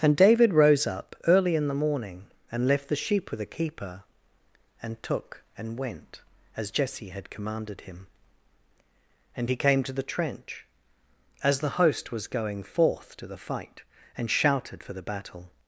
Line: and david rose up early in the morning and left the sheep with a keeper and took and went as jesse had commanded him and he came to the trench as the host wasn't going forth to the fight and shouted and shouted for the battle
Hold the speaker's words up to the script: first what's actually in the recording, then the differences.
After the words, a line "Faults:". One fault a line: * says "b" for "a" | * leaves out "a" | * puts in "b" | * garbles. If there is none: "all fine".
and david rose up early in the morning and left the sheep with a keeper and took and went as jesse had commanded him and he came to the trench as the host was going forth to the fight and shouted for the battle
Faults:
* says "was" for "wasn't"
* leaves out "and shouted"